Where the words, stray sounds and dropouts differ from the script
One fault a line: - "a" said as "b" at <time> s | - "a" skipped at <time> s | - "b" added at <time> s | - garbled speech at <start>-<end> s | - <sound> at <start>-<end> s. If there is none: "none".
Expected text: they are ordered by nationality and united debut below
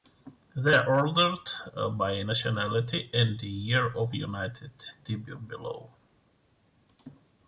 - "year of" added at 3.4 s